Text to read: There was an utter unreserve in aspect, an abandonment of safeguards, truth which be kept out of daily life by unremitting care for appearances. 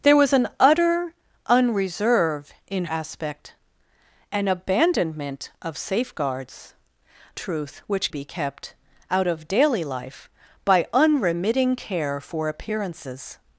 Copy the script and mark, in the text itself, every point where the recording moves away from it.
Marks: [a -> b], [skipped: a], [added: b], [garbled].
There was an utter unreserve in aspect, an abandonment of safeguards, truth which be kept out of daily life by unremitting care for appearances.